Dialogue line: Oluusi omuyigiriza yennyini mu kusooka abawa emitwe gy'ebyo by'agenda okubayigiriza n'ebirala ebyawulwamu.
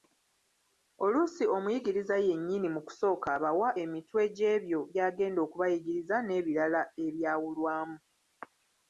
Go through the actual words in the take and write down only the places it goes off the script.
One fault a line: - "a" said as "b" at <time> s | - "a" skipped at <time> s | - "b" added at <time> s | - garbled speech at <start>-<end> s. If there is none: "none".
none